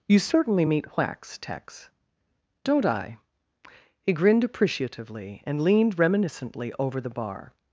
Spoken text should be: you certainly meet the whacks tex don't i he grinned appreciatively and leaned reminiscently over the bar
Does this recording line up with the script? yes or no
no